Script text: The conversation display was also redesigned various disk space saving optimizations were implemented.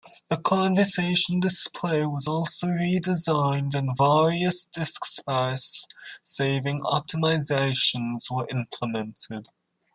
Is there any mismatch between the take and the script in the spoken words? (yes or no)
yes